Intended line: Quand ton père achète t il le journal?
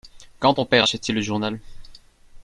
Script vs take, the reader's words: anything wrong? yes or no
no